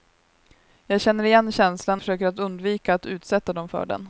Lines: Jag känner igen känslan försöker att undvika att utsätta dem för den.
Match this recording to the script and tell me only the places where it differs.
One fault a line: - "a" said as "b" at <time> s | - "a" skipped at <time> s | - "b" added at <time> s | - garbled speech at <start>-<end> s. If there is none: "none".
none